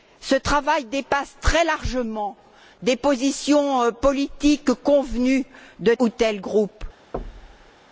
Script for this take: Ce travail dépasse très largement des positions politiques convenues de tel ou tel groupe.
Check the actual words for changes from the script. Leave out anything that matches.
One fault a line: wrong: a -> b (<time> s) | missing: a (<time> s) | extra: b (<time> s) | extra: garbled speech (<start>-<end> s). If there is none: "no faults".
missing: tel (5.9 s)